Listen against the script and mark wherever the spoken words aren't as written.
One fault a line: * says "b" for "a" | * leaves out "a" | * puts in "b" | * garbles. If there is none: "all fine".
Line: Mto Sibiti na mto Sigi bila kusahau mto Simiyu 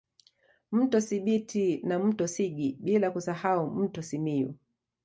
all fine